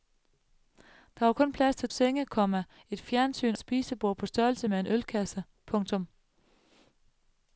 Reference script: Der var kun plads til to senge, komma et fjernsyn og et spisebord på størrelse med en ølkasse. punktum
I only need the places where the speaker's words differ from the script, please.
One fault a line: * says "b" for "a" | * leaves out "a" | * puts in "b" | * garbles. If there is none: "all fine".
* leaves out "to"
* leaves out "og"